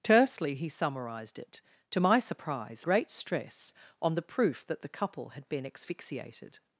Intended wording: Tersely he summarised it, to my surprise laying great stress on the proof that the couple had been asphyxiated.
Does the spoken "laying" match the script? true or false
false